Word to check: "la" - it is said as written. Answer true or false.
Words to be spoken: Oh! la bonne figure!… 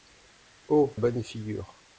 false